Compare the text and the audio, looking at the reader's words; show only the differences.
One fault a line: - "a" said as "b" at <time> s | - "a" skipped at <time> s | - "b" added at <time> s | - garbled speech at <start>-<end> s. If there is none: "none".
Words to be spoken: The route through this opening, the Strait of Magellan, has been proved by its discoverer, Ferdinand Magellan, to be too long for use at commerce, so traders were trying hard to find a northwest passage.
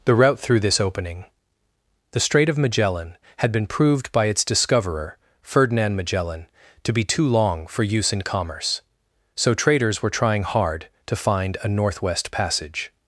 - "has" said as "had" at 3.4 s
- "at" said as "in" at 8.1 s